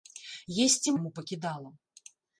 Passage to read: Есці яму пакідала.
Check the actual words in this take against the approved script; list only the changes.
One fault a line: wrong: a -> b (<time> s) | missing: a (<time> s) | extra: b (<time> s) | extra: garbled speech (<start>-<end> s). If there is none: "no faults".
no faults